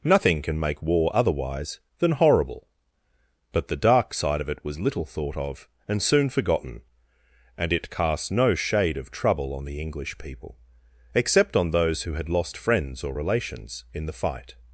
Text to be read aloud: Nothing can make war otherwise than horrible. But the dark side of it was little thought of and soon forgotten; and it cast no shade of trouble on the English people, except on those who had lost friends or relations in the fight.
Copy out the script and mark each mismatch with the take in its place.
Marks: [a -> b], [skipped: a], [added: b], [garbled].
Nothing can make war otherwise than horrible. But the dark side of it was little thought of and soon forgotten; and it cast no shade of trouble on the English people, except on those who had lost friends or relations in the fight.